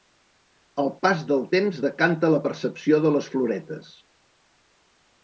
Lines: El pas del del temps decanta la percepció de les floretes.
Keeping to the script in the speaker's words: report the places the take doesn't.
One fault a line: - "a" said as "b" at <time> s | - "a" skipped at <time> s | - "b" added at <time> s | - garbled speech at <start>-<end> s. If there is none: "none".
- "del" skipped at 1.4 s